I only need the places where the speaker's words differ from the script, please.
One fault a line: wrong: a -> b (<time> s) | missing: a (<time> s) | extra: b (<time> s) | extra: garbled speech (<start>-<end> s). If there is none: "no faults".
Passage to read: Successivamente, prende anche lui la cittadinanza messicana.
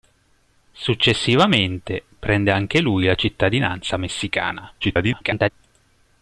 extra: garbled speech (4.8-5.5 s)